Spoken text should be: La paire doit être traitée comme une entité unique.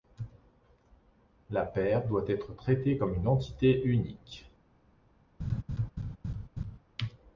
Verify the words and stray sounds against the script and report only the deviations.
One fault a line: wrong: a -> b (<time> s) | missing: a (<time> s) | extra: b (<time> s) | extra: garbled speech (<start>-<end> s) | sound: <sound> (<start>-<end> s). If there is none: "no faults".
sound: laugh (5.4-6.8 s)